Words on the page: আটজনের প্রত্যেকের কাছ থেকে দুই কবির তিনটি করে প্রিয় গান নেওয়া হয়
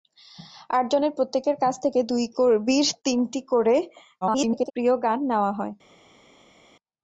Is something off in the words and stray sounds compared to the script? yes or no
yes